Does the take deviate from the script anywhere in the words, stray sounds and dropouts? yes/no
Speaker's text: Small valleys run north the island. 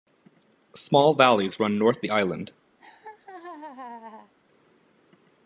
yes